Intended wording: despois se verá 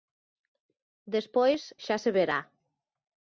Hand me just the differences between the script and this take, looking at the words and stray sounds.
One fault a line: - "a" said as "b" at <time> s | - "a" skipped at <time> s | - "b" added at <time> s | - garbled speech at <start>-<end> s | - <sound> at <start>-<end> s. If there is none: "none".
- "xa" added at 1.8 s